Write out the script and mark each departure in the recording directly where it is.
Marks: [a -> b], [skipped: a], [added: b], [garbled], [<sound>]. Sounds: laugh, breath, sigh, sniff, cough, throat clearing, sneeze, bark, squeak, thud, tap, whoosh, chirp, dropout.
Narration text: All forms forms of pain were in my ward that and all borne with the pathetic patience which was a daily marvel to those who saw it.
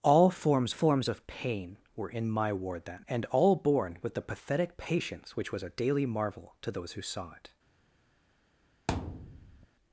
All forms forms of pain were in my ward that and all borne with the pathetic patience which was a daily marvel to those who saw it. [thud]